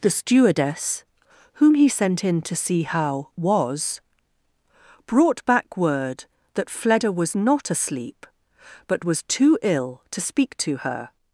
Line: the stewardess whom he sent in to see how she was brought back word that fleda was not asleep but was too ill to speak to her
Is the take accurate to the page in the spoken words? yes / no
no